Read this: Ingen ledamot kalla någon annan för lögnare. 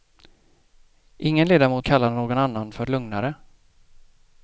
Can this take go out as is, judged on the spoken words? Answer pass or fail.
pass